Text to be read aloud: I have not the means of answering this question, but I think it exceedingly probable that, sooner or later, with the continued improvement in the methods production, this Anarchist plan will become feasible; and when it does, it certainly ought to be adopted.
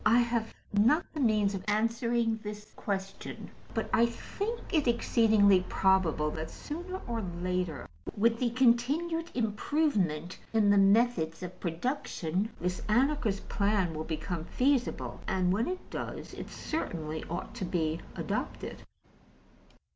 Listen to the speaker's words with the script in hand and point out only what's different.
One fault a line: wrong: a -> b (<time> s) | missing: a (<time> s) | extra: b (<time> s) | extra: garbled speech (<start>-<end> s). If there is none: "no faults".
extra: of (11.4 s)